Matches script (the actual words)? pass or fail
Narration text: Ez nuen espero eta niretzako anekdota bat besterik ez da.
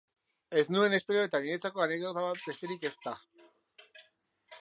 pass